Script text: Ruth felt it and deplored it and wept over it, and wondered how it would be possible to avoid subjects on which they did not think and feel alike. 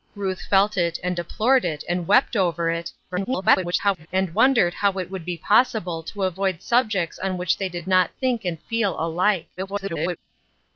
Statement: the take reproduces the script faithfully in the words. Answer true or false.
false